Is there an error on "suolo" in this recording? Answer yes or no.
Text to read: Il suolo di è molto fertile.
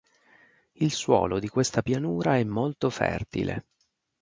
no